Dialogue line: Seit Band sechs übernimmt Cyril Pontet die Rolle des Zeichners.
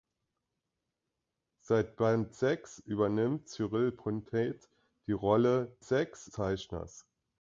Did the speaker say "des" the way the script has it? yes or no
no